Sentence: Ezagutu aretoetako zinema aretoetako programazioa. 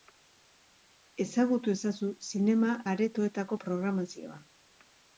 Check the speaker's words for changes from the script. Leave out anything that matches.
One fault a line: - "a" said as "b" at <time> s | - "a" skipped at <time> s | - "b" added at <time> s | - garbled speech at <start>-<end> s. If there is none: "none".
- "aretoetako" said as "ezazu" at 1.7 s